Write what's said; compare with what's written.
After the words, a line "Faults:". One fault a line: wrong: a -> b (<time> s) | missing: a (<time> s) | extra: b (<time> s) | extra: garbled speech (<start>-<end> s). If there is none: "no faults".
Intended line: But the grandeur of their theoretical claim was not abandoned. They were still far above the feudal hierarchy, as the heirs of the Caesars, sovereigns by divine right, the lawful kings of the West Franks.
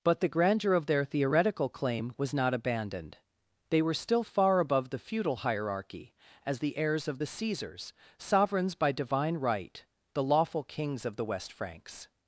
But the grandeur of their theoretical claim was not abandoned. They were still far above the feudal hierarchy, as the heirs of the Caesars, sovereigns by divine right, the lawful kings of the West Franks.
Faults:
no faults